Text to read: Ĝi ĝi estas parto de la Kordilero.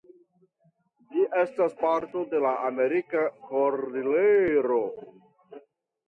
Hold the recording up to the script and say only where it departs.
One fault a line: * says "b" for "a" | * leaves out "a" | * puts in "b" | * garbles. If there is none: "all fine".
* leaves out "ĝi"
* puts in "Amerika"